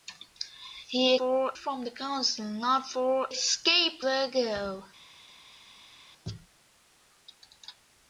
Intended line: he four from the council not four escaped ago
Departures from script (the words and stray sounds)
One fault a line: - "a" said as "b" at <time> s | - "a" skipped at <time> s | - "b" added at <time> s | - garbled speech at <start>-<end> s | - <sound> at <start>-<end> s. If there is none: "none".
none